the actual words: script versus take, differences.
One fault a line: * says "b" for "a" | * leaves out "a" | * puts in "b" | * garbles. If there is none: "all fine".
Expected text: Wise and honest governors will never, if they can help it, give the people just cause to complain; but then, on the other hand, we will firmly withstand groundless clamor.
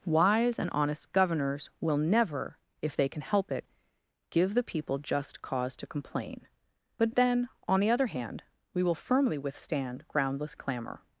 all fine